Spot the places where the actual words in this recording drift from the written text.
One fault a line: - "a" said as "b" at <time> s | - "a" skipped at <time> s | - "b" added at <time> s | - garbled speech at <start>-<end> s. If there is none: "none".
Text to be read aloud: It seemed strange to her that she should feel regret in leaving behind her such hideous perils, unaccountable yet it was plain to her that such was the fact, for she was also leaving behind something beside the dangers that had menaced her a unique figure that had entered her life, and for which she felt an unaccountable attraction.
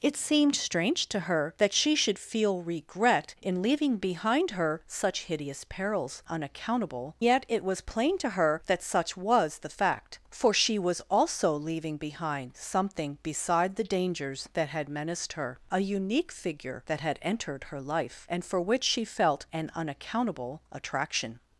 none